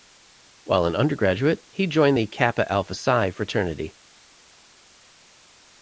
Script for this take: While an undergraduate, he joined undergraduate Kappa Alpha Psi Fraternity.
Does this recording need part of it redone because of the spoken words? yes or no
yes